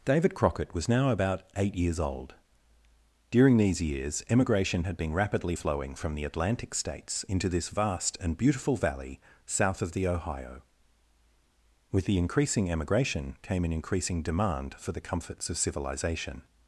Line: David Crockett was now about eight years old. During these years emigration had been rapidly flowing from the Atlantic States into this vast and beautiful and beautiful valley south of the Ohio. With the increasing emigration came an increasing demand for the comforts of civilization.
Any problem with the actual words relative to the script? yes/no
yes